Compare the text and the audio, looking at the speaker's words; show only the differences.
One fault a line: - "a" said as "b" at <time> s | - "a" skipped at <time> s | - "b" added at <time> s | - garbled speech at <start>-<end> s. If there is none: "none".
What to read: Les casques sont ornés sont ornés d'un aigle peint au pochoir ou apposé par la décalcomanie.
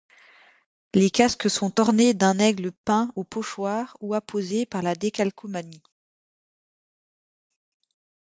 - "sont ornés" skipped at 2.1 s